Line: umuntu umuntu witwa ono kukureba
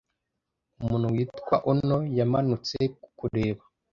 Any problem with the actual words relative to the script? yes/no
yes